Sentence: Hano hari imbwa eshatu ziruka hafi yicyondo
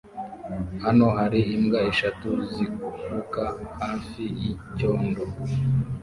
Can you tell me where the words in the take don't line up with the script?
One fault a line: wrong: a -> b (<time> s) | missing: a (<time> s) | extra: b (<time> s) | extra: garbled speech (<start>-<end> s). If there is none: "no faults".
no faults